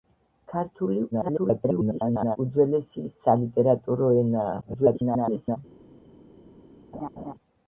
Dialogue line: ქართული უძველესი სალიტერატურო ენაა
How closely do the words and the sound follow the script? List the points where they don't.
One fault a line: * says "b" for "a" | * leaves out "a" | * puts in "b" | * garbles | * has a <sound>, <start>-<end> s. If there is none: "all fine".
* garbles
* garbles
* has a laugh, 6.9-7.3 s